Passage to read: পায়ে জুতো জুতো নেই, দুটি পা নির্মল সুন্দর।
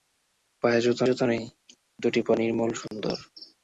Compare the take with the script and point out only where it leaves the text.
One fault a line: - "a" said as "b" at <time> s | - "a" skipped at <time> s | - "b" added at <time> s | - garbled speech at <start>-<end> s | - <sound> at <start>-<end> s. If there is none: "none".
- dropout at 2.9-2.9 s